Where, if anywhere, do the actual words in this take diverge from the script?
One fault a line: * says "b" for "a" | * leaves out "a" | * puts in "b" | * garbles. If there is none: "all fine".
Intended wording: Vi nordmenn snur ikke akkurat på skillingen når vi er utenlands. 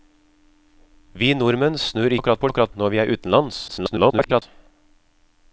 * leaves out "ikke"
* says "akkurat" for "skillingen"
* garbles